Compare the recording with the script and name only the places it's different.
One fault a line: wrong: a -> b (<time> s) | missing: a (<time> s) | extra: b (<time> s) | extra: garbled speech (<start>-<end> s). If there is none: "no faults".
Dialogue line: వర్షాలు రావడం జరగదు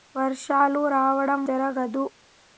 no faults